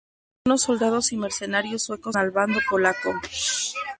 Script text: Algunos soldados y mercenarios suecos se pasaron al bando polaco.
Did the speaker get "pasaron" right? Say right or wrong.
wrong